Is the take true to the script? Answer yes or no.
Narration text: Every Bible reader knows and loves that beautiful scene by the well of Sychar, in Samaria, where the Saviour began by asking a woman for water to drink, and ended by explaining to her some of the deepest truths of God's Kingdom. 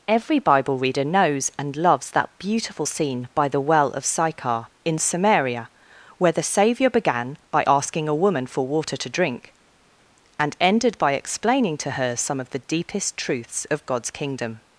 yes